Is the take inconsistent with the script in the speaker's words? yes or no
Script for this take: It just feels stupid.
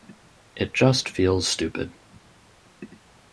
no